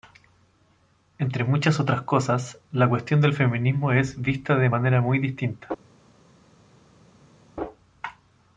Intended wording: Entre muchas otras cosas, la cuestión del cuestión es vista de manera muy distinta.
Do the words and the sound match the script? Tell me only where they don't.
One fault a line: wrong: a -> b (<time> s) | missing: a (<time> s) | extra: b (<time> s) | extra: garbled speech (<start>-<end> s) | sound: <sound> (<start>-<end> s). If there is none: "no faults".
wrong: cuestión -> feminismo (3.4 s)